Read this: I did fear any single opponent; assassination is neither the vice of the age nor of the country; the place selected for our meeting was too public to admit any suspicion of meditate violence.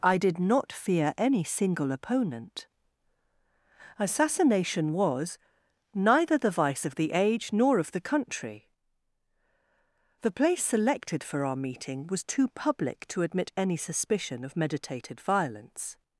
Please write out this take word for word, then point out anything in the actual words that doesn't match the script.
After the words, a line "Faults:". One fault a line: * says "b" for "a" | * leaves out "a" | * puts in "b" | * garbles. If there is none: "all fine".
I did not fear any single opponent; assassination was neither the vice of the age nor of the country; the place selected for our meeting was too public to admit any suspicion of meditated violence.
Faults:
* puts in "not"
* says "was" for "is"
* says "meditated" for "meditate"